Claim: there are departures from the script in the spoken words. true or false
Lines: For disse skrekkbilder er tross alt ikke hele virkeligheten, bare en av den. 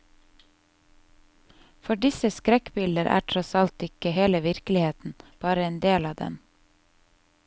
true